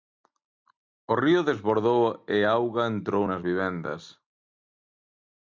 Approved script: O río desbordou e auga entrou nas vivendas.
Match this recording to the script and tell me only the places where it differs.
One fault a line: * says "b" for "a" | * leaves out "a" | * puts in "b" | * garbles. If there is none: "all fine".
all fine